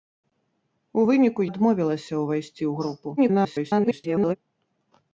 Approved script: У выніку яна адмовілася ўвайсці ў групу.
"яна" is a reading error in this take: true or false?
true